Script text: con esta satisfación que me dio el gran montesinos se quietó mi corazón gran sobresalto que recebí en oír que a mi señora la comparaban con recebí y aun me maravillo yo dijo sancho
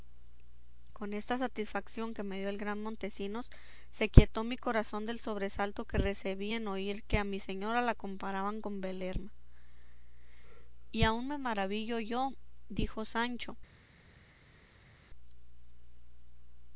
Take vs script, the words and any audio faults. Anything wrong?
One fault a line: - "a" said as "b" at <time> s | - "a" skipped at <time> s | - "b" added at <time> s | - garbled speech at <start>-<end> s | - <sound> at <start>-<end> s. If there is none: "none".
- "gran" said as "del" at 5.0 s
- "recebí" said as "belerma" at 8.8 s